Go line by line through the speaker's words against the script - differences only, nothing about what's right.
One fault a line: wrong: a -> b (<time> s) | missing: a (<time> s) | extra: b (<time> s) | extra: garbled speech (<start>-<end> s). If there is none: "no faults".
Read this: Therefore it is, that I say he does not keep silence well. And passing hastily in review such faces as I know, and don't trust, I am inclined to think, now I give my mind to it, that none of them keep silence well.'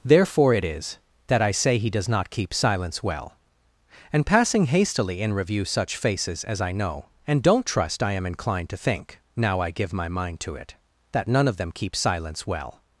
no faults